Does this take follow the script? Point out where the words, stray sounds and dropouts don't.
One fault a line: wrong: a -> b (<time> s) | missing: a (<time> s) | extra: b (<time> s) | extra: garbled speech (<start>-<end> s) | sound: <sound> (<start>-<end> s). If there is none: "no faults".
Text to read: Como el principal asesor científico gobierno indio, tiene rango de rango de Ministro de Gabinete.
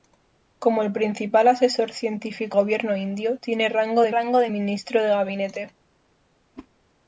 sound: whoosh (6.6-6.7 s)